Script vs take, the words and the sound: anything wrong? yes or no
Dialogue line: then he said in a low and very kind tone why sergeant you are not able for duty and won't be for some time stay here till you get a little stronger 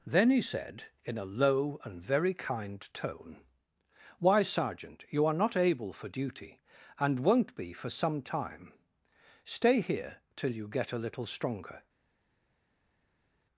no